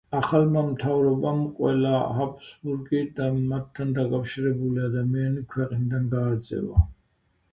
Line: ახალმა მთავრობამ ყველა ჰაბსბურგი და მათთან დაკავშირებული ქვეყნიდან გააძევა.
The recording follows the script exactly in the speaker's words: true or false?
false